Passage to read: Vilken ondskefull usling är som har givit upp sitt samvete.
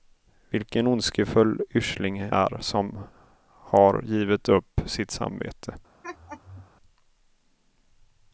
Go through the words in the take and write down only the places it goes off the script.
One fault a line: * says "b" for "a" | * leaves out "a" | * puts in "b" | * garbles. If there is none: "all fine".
all fine